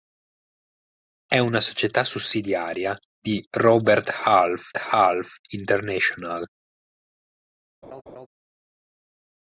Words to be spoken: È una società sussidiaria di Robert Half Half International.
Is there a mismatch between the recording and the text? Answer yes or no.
no